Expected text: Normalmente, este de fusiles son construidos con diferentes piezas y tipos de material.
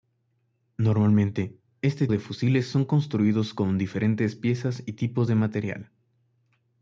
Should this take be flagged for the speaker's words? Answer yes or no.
no